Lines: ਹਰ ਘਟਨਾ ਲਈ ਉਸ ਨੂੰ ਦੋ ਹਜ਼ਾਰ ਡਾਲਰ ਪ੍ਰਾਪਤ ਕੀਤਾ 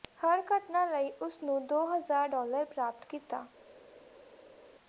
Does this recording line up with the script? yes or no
yes